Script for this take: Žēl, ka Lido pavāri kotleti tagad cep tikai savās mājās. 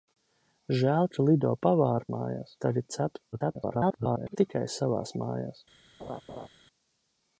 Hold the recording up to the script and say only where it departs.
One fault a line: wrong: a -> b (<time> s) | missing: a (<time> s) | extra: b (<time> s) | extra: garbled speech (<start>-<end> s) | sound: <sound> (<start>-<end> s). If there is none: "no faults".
wrong: kotleti -> mājās (2.2 s)
extra: garbled speech (3.3-4.4 s)
sound: laugh (6.0-6.5 s)